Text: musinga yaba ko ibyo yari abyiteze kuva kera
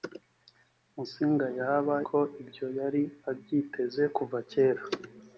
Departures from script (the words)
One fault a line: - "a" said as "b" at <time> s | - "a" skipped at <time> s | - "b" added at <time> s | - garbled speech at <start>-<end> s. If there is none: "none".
none